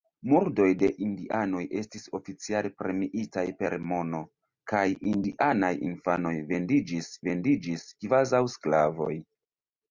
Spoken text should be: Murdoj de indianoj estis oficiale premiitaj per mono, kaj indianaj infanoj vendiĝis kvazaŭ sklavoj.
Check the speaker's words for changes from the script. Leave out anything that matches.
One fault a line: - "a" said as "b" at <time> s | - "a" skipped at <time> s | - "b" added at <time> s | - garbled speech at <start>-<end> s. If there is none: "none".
- "vendiĝis" added at 7.3 s